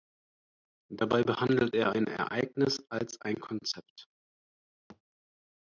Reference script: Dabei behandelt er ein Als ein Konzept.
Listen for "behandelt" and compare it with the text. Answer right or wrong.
right